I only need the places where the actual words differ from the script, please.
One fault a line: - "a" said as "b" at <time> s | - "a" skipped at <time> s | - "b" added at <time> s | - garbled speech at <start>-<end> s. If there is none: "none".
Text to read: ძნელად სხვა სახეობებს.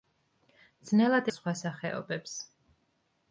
none